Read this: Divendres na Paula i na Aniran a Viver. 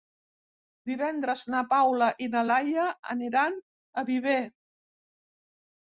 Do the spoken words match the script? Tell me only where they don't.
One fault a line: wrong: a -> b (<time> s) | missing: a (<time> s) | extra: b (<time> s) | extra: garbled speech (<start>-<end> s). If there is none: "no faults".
extra: Laia (2.4 s)